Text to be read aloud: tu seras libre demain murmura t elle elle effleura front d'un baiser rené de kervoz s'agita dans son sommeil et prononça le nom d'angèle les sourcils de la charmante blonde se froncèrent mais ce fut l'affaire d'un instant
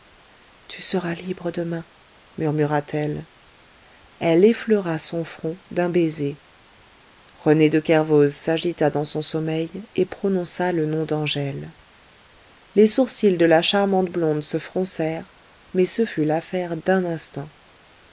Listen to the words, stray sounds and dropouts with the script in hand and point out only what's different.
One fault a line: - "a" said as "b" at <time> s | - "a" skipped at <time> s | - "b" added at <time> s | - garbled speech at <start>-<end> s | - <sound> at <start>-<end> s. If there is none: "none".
- "son" added at 5.0 s